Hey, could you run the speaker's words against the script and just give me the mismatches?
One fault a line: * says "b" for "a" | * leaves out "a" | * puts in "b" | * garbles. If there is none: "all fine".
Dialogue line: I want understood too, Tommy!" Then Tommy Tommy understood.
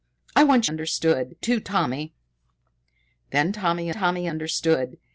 all fine